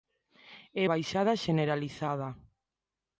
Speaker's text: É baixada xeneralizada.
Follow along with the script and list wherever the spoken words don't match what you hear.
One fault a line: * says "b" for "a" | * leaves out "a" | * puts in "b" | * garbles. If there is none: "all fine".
all fine